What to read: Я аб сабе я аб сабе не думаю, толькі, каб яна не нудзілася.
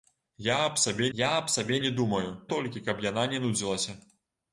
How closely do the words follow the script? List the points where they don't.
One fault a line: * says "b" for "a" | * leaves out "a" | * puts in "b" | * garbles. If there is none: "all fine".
all fine